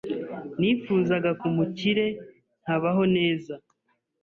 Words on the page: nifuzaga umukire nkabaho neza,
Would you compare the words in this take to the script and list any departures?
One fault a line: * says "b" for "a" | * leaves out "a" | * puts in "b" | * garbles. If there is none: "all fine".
all fine